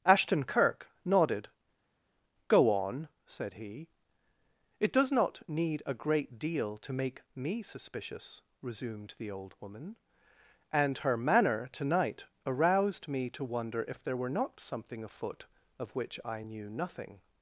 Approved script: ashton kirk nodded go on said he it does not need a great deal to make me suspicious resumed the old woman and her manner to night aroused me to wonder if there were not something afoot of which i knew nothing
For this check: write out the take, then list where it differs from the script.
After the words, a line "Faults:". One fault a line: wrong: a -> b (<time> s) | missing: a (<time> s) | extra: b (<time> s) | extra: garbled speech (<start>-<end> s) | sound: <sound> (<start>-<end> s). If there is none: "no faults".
ashton kirk nodded go on said he it does not need a great deal to make me suspicious resumed the old woman and her manner to night aroused me to wonder if there were not something afoot of which i knew nothing
Faults:
no faults